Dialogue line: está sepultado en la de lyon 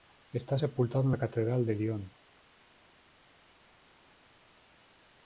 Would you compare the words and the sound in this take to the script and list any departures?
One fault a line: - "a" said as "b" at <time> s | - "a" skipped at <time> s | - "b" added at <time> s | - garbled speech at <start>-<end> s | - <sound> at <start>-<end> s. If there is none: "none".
- "catedral" added at 1.2 s